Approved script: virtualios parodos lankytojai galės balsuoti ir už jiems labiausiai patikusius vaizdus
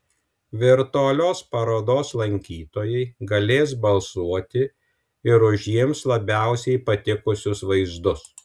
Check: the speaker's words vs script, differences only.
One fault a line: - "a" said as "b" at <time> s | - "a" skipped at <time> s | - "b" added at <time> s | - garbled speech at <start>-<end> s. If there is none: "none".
none